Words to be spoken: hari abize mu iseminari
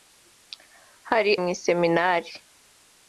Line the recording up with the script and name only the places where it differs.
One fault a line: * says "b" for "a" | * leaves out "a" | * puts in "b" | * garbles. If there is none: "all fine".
* leaves out "abize"